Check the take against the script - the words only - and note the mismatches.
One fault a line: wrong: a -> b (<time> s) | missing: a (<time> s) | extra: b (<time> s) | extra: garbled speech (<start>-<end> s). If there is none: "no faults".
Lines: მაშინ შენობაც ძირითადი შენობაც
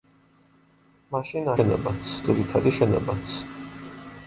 no faults